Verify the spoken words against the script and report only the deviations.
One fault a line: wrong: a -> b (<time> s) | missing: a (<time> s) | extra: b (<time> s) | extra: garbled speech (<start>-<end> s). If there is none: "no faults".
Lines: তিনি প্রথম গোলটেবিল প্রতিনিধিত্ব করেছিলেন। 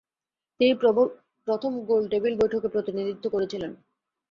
extra: বৈঠকে (2.4 s)